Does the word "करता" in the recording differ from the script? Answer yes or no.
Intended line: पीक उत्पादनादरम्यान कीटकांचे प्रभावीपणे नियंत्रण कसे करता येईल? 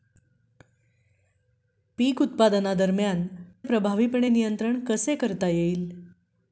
no